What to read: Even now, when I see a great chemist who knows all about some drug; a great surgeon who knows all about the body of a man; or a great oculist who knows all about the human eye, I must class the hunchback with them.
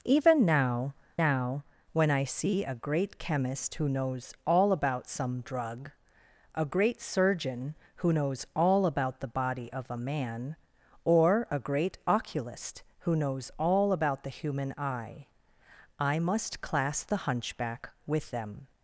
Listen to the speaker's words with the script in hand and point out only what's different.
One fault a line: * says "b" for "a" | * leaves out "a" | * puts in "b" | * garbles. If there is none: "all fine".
* puts in "now"